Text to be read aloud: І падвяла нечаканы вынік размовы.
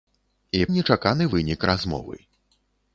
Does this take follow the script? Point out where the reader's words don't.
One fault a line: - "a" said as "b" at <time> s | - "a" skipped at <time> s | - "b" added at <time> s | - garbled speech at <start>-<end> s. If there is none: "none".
- "падвяла" skipped at 0.6 s